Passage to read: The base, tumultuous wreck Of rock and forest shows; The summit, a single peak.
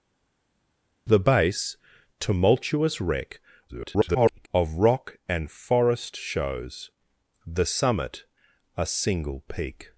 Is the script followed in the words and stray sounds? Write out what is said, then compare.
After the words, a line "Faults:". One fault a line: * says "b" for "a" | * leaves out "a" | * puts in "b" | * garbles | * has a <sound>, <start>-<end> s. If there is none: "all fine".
The base, tumultuous wreck [garbled] Of rock and forest shows; The summit, a single peak.
Faults:
* garbles